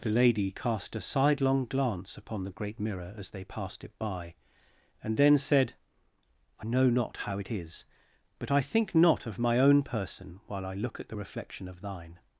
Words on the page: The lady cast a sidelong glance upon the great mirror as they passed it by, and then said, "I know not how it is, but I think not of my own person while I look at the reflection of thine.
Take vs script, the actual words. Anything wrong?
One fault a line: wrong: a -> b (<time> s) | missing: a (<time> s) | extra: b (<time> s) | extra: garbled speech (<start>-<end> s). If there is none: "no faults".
no faults